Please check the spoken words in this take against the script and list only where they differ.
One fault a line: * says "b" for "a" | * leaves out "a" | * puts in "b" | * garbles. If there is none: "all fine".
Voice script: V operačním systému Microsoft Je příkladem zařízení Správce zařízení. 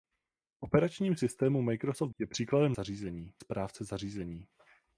all fine